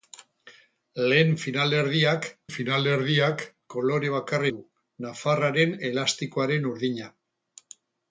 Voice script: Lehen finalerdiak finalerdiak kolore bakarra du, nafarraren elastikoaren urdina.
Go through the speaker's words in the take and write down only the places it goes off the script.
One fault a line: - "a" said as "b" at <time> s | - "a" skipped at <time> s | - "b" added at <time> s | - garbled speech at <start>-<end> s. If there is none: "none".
none